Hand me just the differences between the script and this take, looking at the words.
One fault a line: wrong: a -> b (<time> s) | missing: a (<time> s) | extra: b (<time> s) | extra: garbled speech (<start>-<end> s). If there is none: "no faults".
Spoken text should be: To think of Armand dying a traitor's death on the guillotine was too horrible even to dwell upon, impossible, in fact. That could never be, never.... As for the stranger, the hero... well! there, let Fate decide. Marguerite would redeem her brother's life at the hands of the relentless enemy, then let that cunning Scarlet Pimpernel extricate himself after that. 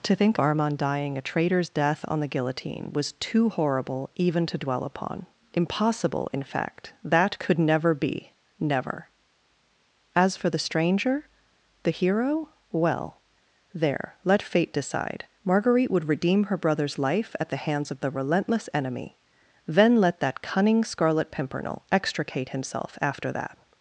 missing: of (0.4 s)